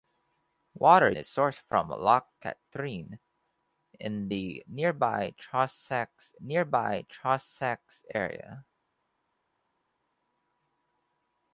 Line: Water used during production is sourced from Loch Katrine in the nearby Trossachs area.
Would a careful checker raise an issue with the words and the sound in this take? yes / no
yes